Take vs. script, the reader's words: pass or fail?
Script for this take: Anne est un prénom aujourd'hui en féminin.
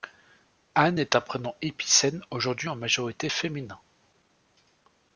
fail